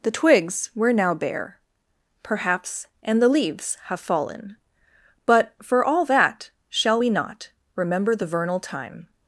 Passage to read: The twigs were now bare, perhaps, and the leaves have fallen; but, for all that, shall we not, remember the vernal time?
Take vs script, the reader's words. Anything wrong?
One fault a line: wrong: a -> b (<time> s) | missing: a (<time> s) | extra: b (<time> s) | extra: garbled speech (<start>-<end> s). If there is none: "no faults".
no faults